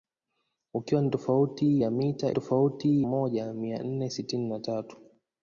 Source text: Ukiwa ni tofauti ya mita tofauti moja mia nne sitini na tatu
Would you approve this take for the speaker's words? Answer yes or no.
yes